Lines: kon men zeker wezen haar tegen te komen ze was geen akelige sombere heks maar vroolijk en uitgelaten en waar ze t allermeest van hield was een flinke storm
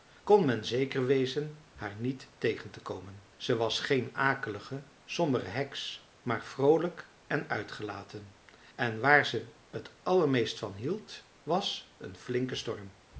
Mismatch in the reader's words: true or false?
true